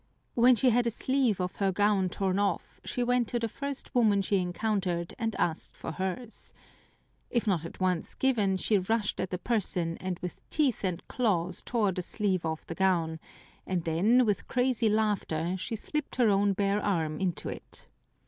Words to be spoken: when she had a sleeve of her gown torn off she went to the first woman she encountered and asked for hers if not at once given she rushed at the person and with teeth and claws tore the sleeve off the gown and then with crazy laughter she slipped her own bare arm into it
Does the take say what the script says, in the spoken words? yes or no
yes